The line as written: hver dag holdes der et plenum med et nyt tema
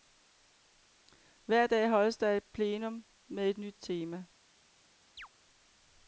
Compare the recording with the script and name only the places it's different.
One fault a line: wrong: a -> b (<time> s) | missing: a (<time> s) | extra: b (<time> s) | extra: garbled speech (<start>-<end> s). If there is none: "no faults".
no faults